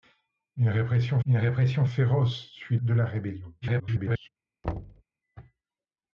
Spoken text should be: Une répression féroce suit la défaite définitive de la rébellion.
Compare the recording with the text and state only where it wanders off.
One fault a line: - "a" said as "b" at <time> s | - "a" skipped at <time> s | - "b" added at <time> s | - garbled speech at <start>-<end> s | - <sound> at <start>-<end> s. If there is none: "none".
- "une répression" added at 1.2 s
- "la défaite définitive" skipped at 2.8 s
- garbled speech at 3.6-4.3 s
- thud at 4.6-5.0 s